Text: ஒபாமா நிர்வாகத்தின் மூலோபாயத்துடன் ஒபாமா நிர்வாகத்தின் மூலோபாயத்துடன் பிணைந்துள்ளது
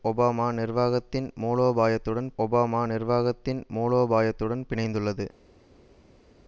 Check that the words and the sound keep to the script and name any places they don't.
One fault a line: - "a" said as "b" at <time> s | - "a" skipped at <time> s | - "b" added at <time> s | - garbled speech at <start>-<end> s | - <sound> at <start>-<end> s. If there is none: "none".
none